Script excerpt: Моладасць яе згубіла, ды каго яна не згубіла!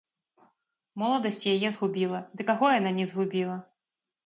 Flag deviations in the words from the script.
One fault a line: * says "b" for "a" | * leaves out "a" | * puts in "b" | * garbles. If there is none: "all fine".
all fine